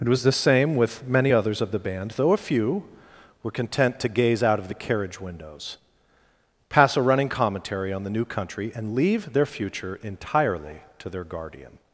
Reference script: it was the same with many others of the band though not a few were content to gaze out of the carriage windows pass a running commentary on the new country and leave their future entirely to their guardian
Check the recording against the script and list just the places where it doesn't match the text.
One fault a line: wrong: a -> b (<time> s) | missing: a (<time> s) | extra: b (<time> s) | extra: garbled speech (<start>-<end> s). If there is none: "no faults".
missing: not (2.3 s)